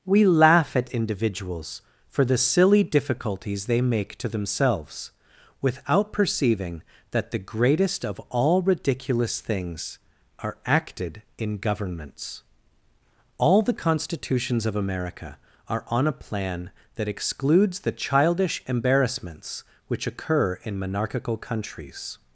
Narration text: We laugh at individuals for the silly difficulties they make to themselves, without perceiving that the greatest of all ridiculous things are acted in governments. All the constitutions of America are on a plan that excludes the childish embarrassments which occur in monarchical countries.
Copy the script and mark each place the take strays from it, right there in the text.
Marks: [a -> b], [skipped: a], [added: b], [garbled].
We laugh at individuals for the silly difficulties they make to themselves, without perceiving that the greatest of all ridiculous things are acted in governments. All the constitutions of America are on a plan that excludes the childish embarrassments which occur in monarchical countries.